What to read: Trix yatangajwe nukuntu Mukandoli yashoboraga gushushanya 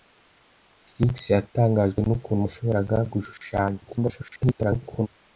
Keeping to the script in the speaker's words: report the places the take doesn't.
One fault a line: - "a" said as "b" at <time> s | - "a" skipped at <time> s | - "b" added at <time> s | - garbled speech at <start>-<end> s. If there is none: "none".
- "Mukandoli" skipped at 2.4 s
- garbled speech at 3.9-5.1 s